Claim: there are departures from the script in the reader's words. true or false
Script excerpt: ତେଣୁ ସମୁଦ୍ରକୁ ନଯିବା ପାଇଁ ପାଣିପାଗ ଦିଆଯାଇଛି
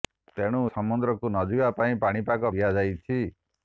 false